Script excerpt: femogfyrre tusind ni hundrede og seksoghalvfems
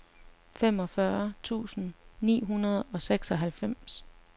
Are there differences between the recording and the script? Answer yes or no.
no